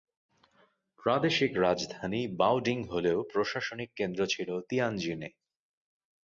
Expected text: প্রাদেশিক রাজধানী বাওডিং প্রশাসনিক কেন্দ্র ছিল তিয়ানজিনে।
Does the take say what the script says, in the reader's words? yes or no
no